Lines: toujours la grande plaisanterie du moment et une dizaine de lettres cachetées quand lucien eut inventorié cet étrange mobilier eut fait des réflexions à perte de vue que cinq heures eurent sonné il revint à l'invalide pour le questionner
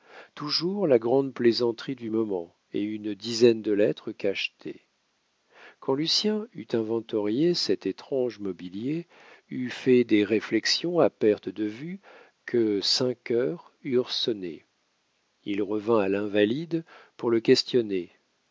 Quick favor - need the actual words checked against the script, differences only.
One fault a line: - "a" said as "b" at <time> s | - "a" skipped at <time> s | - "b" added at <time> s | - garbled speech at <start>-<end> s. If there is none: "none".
none